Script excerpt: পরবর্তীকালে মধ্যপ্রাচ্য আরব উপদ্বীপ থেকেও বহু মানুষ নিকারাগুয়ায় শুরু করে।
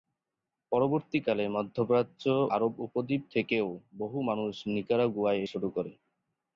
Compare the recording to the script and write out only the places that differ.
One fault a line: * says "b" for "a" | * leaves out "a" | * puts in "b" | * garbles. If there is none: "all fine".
all fine